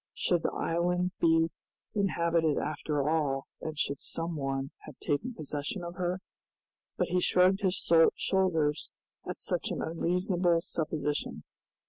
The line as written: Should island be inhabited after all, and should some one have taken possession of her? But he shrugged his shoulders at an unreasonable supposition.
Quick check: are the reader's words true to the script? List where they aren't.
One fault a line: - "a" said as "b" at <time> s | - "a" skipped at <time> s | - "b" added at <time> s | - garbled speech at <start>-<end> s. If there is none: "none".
- "the" added at 0.4 s
- "such" added at 9.4 s